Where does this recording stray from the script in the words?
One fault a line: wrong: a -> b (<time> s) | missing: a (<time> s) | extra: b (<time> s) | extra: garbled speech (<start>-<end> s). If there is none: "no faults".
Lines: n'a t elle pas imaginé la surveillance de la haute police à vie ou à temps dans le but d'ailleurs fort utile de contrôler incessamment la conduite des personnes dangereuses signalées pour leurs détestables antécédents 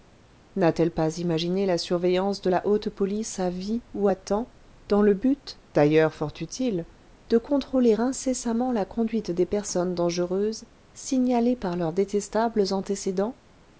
wrong: pour -> par (11.5 s)